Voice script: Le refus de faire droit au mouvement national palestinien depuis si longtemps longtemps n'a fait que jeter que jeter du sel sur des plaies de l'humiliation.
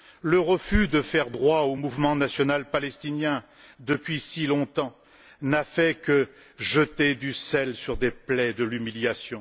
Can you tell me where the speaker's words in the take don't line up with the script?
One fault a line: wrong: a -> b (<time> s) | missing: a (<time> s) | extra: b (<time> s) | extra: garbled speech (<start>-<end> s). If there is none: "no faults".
missing: longtemps (5.0 s)
missing: que jeter (7.1 s)